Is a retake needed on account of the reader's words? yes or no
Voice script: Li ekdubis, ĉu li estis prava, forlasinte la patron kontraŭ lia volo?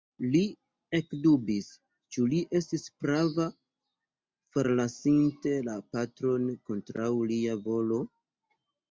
no